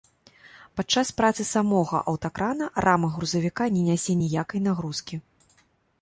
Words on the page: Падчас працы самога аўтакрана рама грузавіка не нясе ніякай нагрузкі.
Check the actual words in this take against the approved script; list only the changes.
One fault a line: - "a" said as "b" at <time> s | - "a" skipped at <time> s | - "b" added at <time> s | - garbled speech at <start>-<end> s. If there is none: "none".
none